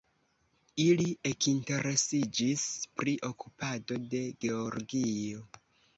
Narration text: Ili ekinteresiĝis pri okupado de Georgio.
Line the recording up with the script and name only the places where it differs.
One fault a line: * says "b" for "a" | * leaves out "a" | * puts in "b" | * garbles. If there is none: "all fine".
all fine